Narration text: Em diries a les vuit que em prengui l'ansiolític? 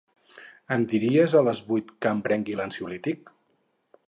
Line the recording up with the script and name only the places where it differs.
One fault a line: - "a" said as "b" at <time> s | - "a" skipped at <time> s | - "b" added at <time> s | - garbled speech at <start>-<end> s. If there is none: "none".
none